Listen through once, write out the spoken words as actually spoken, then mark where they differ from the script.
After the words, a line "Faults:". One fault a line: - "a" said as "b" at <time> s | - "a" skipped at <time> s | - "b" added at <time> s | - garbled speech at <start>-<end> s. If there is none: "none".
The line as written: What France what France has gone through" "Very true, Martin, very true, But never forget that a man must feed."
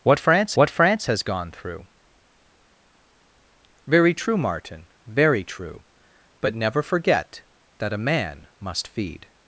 What France what France has gone through" "Very true, Martin, very true, But never forget that a man must feed."
Faults:
none